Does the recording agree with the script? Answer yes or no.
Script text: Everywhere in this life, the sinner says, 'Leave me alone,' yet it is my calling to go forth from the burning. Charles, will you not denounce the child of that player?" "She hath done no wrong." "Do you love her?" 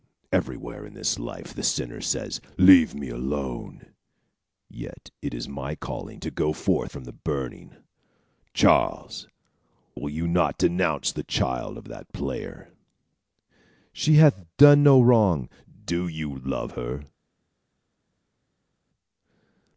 yes